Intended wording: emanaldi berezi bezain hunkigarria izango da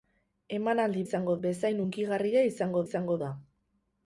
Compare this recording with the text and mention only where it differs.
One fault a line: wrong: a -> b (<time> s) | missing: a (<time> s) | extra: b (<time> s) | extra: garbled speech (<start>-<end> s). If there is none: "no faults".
wrong: berezi -> izango (1.1 s)
extra: izango (2.9 s)